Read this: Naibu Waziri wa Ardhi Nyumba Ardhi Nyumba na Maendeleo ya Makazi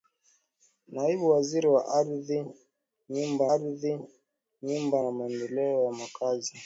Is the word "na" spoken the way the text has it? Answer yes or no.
yes